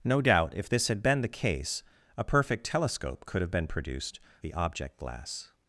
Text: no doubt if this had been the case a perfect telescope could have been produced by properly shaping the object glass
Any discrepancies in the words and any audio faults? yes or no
yes